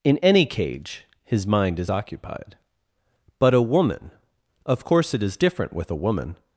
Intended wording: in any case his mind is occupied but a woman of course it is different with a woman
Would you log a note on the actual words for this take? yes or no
yes